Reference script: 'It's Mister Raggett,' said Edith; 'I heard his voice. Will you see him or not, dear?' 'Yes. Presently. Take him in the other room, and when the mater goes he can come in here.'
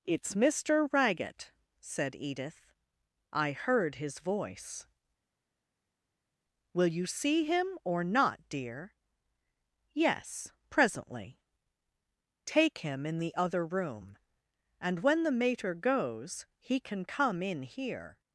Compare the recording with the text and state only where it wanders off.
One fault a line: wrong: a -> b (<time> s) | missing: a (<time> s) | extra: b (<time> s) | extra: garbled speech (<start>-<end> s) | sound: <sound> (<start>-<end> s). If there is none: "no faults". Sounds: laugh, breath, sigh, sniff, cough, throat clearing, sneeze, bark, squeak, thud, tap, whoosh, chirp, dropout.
no faults